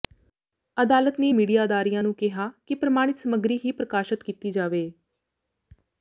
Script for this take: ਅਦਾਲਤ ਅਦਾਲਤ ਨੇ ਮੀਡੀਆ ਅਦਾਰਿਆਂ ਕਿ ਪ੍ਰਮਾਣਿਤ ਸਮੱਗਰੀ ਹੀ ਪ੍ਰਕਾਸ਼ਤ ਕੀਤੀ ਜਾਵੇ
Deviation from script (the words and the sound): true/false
true